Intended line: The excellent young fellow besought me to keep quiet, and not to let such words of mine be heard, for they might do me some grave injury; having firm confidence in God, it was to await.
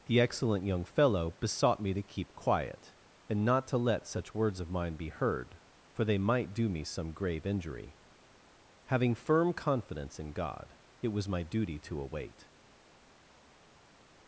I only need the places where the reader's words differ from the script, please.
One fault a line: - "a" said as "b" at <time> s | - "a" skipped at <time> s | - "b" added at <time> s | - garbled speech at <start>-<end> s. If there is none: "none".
- "my duty" added at 11.3 s